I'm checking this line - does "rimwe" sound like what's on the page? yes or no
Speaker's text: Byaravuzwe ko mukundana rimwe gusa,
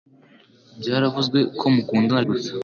no